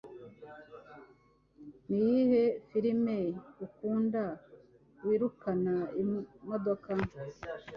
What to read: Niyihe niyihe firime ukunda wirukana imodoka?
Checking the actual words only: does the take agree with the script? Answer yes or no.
no